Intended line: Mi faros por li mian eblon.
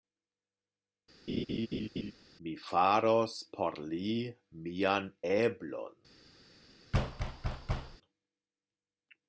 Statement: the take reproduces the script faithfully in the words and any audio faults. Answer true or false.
false